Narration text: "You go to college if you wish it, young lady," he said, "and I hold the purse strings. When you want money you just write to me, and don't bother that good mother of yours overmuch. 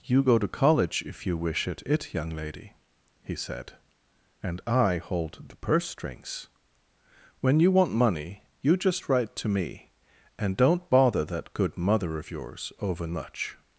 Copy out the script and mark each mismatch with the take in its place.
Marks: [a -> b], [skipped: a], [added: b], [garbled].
"You go to college if you wish it, [added: it] young lady," he said, "and I hold the purse strings. When you want money you just write to me, and don't bother that good mother of yours overmuch.